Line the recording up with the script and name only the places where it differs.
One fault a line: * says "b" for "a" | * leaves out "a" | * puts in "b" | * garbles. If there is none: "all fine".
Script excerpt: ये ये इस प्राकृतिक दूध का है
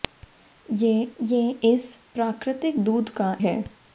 all fine